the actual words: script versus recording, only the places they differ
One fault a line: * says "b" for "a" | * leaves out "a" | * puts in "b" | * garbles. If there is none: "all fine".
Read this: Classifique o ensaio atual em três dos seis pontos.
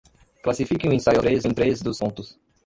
* says "três" for "atual"
* leaves out "seis"